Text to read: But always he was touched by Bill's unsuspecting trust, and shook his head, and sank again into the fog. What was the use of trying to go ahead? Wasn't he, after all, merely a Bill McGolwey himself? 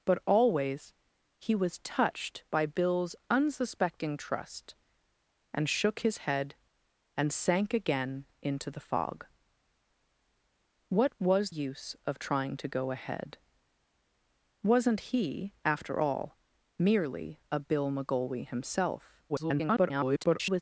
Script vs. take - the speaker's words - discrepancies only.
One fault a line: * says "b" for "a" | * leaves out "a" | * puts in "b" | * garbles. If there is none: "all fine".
* leaves out "the"
* garbles